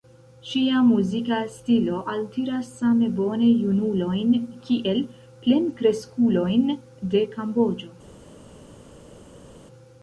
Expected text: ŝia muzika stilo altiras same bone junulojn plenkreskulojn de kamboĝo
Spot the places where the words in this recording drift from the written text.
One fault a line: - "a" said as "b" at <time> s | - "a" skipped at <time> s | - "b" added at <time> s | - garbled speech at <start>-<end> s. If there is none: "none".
- "kiel" added at 4.7 s